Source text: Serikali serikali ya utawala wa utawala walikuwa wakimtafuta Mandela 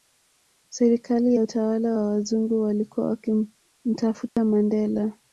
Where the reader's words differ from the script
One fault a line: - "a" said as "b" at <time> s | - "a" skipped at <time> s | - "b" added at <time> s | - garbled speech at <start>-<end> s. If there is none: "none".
- "serikali" skipped at 1.4 s
- "utawala" said as "wazungu" at 2.1 s